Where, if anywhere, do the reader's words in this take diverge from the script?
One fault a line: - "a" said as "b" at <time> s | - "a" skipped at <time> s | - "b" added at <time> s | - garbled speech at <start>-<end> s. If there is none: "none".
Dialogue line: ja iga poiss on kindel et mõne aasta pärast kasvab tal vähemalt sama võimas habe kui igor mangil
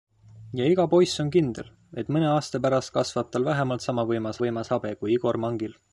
- "võimas" added at 4.4 s